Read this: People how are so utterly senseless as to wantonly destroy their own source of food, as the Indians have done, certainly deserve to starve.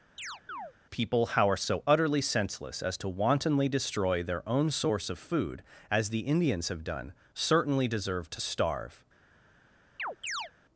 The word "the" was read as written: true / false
true